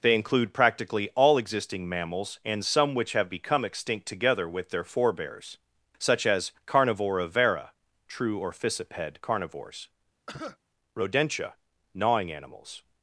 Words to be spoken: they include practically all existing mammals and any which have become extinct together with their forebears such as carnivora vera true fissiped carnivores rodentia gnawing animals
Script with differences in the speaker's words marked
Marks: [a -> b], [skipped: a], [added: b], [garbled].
they include practically all existing mammals and [any -> some] which have become extinct together with their forebears such as carnivora vera true [added: or] fissiped carnivores rodentia gnawing animals